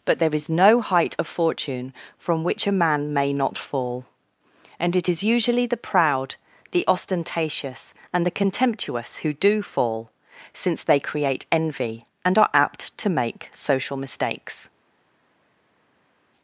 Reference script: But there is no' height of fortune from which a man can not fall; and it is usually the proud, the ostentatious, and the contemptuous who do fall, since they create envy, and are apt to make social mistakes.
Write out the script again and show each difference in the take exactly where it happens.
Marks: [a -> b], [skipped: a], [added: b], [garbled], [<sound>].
But there is no' height of fortune from which a man [can -> may] not fall; and it is usually the proud, the ostentatious, and the contemptuous who do fall, since they create envy, and are apt to make social mistakes.